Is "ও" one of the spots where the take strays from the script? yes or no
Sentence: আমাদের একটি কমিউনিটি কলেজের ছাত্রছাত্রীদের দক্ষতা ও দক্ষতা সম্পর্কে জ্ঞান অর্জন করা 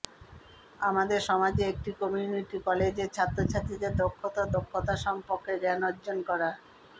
no